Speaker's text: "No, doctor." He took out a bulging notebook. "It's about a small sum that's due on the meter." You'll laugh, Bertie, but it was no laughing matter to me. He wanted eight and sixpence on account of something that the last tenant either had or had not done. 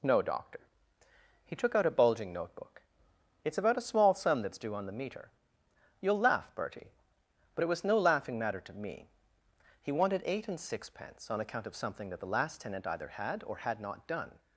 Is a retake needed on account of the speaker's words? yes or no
no